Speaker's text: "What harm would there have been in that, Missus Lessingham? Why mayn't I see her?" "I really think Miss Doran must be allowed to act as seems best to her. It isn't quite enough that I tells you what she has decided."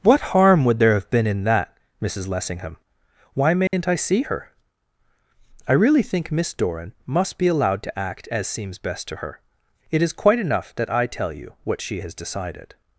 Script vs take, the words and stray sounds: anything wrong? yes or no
yes